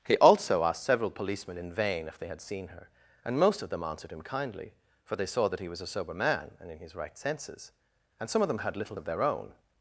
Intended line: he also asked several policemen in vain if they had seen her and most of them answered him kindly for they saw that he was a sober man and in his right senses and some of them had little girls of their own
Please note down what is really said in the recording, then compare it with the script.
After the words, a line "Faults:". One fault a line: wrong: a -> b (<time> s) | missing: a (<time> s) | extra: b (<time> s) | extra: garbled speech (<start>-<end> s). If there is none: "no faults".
he also asked several policemen in vain if they had seen her and most of them answered him kindly for they saw that he was a sober man and in his right senses and some of them had little of their own
Faults:
missing: girls (8.9 s)